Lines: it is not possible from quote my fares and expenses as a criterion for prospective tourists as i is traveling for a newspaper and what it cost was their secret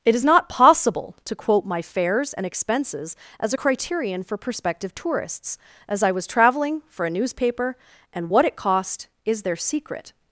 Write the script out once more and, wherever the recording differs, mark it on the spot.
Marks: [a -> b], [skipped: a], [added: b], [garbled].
it is not possible [from -> to] quote my fares and expenses as a criterion for prospective tourists as i [is -> was] traveling for a newspaper and what it cost [was -> is] their secret